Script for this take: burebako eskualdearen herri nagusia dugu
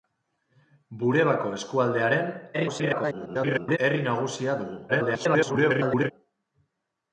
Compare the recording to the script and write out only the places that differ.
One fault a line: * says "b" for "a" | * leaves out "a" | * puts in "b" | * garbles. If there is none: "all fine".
* garbles
* garbles